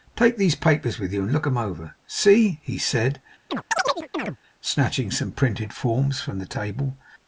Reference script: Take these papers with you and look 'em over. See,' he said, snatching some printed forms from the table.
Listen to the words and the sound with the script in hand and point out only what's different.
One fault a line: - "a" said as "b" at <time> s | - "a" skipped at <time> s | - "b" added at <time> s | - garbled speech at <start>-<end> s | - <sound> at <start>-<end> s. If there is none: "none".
- chirp at 3.5-4.4 s